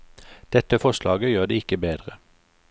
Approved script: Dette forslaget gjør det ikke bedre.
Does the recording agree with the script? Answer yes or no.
yes